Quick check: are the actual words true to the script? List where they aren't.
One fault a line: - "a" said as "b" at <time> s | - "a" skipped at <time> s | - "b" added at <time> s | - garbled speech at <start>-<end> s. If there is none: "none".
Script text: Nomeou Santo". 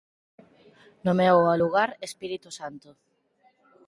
- "ao lugar Espírito" added at 1.4 s